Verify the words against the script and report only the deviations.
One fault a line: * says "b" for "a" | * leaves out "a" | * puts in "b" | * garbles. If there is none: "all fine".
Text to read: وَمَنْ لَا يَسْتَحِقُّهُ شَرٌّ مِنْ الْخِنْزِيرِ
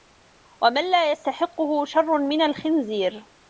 all fine